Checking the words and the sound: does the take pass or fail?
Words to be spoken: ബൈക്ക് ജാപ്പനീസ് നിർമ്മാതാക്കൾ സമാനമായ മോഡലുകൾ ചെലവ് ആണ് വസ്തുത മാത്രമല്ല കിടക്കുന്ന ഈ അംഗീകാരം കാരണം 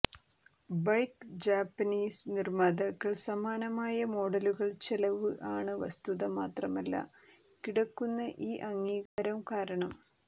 fail